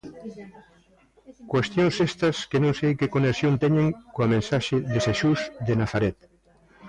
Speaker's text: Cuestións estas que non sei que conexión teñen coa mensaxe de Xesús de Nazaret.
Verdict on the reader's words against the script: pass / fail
pass